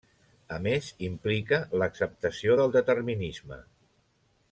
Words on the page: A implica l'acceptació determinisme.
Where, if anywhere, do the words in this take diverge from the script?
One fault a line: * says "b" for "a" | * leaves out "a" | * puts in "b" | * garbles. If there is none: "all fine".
* puts in "més"
* puts in "del"